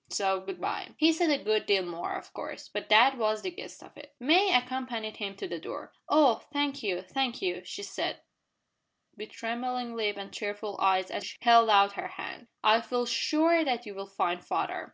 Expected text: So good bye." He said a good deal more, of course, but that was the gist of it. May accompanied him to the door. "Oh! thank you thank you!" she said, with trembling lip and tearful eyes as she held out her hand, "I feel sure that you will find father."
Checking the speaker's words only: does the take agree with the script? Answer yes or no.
yes